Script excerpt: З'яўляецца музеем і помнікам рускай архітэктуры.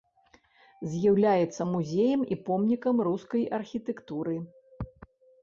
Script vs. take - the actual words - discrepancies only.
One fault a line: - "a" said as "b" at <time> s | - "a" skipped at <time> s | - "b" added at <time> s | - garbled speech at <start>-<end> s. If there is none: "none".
none